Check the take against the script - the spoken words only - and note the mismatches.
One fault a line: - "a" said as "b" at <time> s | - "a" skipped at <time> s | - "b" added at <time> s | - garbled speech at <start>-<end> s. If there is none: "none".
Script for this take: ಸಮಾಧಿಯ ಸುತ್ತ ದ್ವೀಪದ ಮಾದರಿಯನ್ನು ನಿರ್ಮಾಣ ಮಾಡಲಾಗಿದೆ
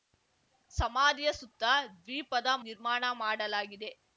- "ಮಾದರಿಯನ್ನು" skipped at 2.5 s